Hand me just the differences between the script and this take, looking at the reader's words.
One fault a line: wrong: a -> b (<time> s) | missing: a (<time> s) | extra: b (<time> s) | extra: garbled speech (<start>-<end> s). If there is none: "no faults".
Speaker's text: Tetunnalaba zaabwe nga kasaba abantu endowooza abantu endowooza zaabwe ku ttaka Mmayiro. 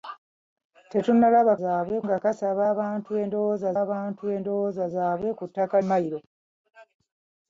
no faults